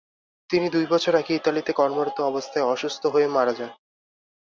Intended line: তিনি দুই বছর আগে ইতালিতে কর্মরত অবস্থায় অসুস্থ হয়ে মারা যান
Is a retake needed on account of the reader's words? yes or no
no